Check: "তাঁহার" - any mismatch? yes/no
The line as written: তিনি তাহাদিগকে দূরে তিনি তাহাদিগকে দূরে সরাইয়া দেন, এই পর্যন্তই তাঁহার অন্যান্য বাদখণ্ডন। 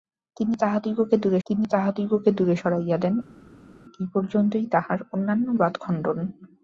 no